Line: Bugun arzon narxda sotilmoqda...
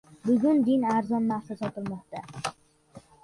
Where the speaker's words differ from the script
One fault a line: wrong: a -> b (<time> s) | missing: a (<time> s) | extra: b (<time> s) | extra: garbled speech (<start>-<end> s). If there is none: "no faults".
extra: din (0.7 s)